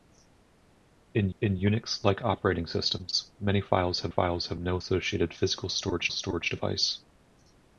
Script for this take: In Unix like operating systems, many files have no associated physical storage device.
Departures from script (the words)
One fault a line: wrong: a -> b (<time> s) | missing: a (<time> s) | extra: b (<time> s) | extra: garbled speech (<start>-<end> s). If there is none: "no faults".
extra: in (1.4 s)
extra: files have (4.1 s)
extra: storage (6.1 s)